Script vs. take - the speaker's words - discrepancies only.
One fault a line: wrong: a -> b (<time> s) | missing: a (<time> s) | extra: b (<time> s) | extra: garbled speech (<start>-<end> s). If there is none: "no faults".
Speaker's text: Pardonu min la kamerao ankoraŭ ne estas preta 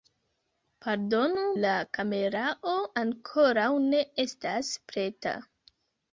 missing: min (1.4 s)